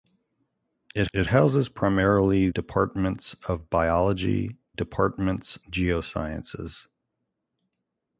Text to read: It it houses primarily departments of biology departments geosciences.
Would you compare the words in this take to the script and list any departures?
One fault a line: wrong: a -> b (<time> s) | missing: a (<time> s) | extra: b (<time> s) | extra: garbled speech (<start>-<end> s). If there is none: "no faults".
no faults